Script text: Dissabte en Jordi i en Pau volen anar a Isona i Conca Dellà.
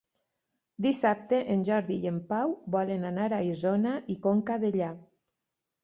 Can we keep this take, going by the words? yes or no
yes